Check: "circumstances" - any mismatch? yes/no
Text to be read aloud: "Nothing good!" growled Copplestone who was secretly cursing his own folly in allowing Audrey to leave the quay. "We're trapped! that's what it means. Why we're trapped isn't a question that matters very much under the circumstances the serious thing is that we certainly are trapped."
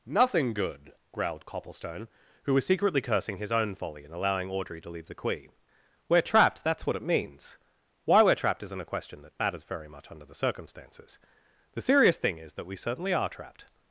no